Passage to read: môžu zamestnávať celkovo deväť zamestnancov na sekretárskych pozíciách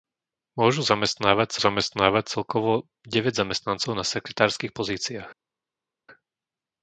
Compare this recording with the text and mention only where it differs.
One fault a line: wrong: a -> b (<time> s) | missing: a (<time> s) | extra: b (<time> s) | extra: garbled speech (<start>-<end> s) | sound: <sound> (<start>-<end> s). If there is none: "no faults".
extra: zamestnávať (1.6 s)